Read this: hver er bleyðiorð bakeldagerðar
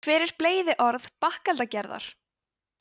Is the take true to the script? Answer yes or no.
yes